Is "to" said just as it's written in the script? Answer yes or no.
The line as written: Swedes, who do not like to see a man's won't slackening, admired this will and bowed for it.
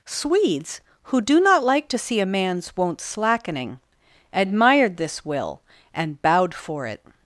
yes